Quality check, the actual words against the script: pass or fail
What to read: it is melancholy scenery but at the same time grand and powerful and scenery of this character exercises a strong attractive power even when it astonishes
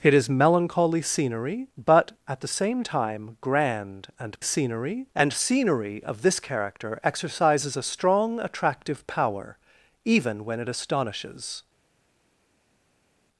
fail